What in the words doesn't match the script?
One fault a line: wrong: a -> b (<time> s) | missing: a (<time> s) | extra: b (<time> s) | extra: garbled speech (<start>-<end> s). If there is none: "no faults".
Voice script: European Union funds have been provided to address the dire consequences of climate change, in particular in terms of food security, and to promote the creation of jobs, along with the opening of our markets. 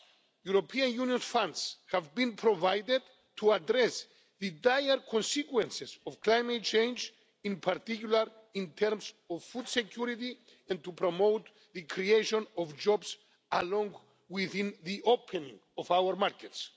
no faults